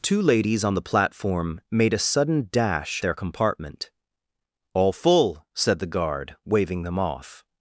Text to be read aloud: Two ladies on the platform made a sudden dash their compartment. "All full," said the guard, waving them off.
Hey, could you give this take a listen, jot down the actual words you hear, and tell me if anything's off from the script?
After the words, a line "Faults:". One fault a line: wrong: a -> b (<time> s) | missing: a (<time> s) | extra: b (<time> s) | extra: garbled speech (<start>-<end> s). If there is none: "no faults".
Two ladies on the platform made a sudden dash their compartment. "All full," said the guard, waving them off.
Faults:
no faults